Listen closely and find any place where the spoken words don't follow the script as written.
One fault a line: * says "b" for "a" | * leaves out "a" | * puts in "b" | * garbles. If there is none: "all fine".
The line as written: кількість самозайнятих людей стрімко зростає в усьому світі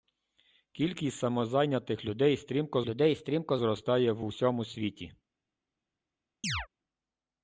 * puts in "людей стрімко"